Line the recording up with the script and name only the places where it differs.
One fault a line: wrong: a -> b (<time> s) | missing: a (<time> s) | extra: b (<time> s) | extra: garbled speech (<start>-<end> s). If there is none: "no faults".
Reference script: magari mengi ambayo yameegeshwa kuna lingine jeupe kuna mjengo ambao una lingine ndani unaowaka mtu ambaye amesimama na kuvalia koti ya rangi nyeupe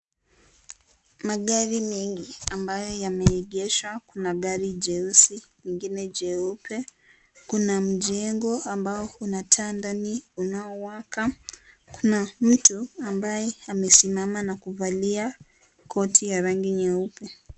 extra: gari jeusi (4.3 s)
wrong: lingine -> taa (9.4 s)
extra: kuna (11.9 s)